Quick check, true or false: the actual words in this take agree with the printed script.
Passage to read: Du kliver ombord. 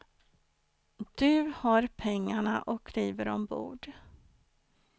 false